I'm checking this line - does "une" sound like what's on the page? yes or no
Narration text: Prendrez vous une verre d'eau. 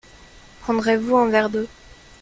no